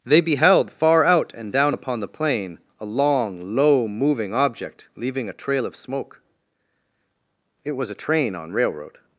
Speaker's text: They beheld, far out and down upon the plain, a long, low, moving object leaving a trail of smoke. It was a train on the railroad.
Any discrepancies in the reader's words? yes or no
yes